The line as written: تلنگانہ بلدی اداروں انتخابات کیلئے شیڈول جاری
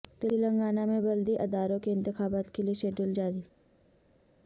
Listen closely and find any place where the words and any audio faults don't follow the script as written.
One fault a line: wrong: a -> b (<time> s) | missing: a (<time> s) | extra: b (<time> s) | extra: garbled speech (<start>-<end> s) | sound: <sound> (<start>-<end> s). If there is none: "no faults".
extra: میں (0.8 s)
extra: کے (1.8 s)